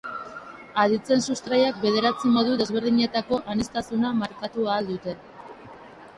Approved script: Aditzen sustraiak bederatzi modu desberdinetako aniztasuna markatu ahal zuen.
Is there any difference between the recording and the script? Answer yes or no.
yes